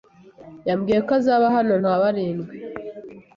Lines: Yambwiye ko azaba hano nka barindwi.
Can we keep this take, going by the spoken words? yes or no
yes